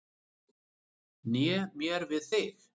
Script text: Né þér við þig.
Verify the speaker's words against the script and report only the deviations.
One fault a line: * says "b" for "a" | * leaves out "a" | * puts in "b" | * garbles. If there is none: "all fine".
* says "mér" for "þér"